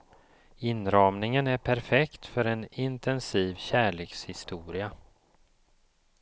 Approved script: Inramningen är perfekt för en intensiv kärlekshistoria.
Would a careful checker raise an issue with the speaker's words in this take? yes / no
no